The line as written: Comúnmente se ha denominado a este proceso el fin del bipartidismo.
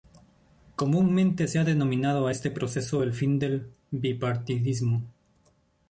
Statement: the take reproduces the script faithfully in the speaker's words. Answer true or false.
true